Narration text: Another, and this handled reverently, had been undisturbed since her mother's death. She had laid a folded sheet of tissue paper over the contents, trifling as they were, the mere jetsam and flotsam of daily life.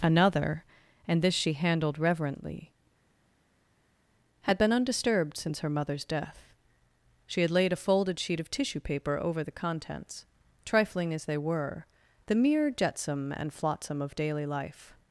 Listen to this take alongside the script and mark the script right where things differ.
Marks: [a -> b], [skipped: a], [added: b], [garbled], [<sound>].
Another, and this [added: she] handled reverently, had been undisturbed since her mother's death. She had laid a folded sheet of tissue paper over the contents, trifling as they were, the mere jetsam and flotsam of daily life.